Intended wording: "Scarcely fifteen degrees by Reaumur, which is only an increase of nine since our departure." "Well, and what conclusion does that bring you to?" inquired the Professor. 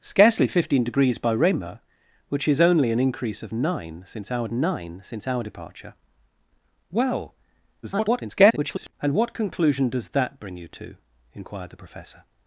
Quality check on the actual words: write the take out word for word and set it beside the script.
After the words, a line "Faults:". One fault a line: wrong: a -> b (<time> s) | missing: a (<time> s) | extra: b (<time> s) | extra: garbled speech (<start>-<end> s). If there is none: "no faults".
"Scarcely fifteen degrees by Reaumur, which is only an increase of nine since our nine since our departure." "Well, [garbled] and what conclusion does that bring you to?" inquired the Professor.
Faults:
extra: nine since our (4.5 s)
extra: garbled speech (7.8-8.9 s)